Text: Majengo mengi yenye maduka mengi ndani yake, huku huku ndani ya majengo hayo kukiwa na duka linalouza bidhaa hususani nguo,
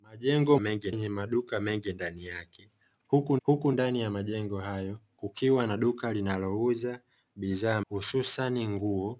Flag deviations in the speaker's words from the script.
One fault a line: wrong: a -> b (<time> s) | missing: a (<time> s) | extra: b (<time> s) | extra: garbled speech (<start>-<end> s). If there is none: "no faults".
no faults